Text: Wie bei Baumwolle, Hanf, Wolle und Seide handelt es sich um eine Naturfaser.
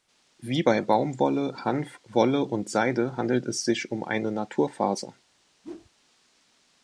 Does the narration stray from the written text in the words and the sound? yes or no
yes